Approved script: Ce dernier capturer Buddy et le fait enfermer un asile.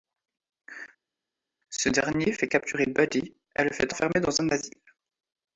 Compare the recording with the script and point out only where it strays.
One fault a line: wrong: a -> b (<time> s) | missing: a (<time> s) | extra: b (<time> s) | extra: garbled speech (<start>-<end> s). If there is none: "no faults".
extra: fait (2.3 s)
extra: dans (4.2 s)